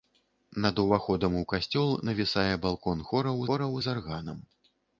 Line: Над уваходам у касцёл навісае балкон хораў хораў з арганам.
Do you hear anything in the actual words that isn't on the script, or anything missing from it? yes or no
no